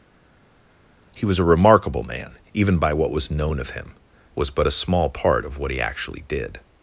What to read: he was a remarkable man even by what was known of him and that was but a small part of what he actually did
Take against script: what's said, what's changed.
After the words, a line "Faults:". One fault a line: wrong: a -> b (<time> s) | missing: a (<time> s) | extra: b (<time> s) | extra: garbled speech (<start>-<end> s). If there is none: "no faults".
he was a remarkable man even by what was known of him was but a small part of what he actually did
Faults:
missing: and that (3.9 s)